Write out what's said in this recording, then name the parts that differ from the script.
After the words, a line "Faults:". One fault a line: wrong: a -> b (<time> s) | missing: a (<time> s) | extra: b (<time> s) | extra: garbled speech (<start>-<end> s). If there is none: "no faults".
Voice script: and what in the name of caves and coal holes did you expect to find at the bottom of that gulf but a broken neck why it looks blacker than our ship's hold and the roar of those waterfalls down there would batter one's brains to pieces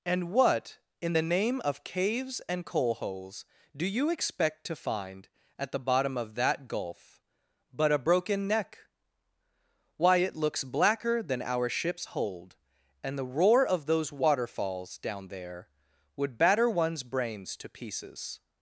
and what in the name of caves and coal holes do you expect to find at the bottom of that gulf but a broken neck why it looks blacker than our ship's hold and the roar of those waterfalls down there would batter one's brains to pieces
Faults:
wrong: did -> do (3.8 s)